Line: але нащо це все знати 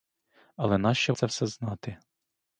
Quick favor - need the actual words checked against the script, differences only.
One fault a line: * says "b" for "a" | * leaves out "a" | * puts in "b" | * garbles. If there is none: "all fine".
all fine